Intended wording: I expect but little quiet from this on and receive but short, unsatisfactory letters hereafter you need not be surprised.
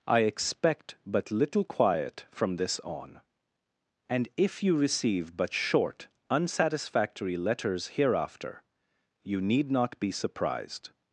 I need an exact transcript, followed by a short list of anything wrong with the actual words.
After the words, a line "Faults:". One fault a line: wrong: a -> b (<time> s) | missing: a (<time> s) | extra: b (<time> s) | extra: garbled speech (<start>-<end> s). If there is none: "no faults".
I expect but little quiet from this on and if you receive but short, unsatisfactory letters hereafter you need not be surprised.
Faults:
extra: if you (4.4 s)